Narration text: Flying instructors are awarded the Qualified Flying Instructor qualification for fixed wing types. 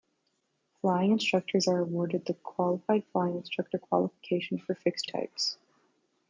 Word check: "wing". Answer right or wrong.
wrong